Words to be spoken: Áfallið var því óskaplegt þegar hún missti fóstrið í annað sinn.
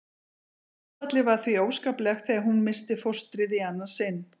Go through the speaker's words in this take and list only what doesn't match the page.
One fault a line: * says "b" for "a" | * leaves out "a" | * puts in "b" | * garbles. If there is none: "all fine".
all fine